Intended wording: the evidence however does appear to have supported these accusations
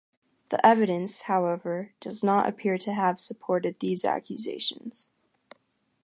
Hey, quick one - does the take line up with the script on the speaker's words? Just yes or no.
no